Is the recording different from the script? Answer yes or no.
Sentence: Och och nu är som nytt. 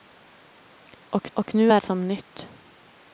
no